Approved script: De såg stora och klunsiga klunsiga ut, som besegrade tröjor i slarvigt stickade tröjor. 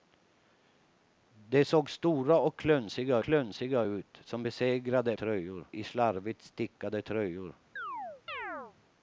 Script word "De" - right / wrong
right